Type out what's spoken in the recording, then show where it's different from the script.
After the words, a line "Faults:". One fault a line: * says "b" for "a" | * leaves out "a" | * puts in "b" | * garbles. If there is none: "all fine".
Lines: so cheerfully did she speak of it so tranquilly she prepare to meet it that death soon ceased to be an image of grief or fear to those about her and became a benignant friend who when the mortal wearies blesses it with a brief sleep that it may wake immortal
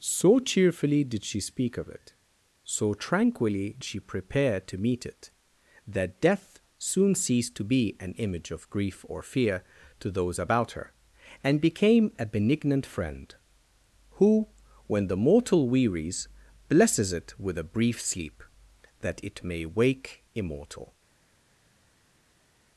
so cheerfully did she speak of it so tranquilly she prepare to meet it that death soon ceased to be an image of grief or fear to those about her and became a benignant friend who when the mortal wearies blesses it with a brief sleep that it may wake immortal
Faults:
all fine